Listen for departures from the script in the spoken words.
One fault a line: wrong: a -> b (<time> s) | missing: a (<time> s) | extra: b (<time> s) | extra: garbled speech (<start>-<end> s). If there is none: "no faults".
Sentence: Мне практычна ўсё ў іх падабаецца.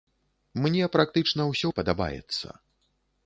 missing: ў (1.7 s)